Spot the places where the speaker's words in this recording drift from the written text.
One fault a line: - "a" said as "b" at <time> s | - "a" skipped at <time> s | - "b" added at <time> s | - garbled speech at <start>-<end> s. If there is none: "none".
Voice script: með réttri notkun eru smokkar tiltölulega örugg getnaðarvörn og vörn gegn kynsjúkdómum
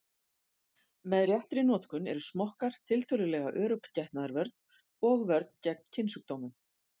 none